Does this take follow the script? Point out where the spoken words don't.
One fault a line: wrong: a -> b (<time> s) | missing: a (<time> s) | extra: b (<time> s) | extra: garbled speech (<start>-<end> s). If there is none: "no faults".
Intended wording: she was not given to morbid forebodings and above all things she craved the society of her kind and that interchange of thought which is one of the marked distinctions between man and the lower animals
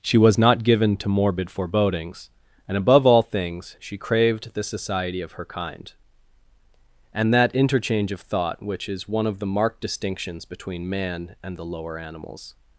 no faults